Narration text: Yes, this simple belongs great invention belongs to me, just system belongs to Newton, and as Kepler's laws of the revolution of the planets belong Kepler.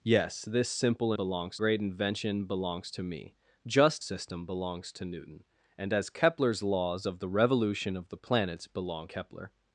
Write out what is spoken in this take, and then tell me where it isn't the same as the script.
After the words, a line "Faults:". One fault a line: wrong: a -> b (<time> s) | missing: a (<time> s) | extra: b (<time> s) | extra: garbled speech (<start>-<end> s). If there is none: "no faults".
Yes, this simple belongs great invention belongs to me, just system belongs to Newton, and as Kepler's laws of the revolution of the planets belong Kepler.
Faults:
no faults